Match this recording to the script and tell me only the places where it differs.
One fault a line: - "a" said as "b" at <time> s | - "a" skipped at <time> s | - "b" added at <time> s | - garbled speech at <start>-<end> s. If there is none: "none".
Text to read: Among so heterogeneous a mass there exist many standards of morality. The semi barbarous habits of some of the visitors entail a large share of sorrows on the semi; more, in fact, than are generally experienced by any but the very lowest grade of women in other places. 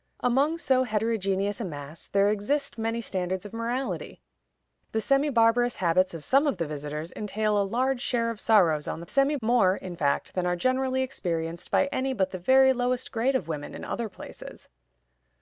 none